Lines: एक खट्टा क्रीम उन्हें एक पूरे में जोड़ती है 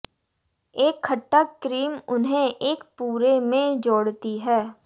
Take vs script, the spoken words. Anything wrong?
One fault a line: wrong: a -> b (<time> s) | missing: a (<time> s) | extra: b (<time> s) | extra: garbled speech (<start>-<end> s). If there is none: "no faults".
no faults